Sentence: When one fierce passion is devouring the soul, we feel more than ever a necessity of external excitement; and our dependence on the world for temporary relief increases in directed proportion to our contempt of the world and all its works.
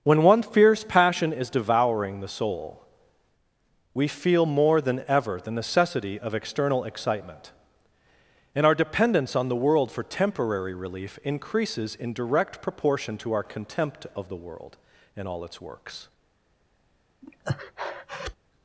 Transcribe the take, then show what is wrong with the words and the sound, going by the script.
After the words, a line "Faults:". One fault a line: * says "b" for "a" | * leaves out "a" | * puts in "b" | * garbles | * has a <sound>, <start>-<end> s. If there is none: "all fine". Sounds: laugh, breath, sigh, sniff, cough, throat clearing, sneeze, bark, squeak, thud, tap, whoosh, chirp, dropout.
When one fierce passion is devouring the soul, we feel more than ever the necessity of external excitement; and our dependence on the world for temporary relief increases in direct proportion to our contempt of the world and all its works.
Faults:
* says "the" for "a"
* says "direct" for "directed"
* has a breath, 17.2-18.4 s